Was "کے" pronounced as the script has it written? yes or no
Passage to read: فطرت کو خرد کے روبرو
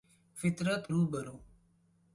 no